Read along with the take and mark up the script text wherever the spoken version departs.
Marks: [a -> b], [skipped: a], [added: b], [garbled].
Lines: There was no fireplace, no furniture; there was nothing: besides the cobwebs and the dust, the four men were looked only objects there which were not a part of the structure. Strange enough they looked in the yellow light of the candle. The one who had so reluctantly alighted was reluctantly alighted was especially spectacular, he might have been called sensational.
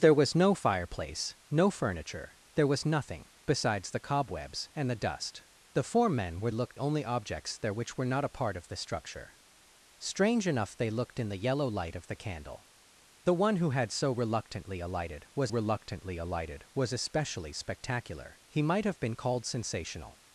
There was no fireplace, no furniture; there was nothing: besides the cobwebs and the dust, the four men were looked only objects there which were not a part of the structure. Strange enough they looked in the yellow light of the candle. The one who had so reluctantly alighted was reluctantly alighted was especially spectacular, he might have been called sensational.